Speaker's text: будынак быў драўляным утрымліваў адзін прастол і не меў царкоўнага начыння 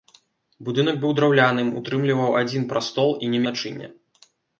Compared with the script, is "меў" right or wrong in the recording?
wrong